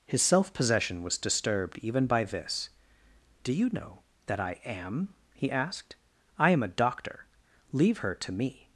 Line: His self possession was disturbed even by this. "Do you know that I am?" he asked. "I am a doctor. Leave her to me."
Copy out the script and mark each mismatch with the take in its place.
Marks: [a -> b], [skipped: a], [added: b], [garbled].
His self possession was disturbed even by this. "Do you know that I am?" he asked. "I am a doctor. Leave her to me."